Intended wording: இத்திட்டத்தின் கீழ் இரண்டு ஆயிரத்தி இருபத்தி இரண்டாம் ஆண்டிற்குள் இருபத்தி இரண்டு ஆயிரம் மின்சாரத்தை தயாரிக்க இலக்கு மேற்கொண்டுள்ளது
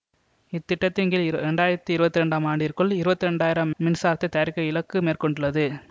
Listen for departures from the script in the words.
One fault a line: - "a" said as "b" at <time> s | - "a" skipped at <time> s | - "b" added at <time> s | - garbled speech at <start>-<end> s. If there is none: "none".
none